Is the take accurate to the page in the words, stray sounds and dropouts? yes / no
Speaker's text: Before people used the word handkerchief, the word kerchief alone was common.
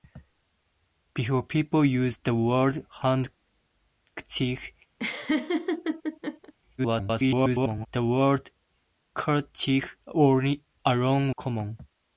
no